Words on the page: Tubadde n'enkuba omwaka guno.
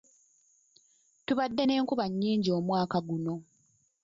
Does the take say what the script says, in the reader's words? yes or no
no